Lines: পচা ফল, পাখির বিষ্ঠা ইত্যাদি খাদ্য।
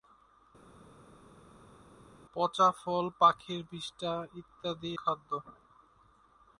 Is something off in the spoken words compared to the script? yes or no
no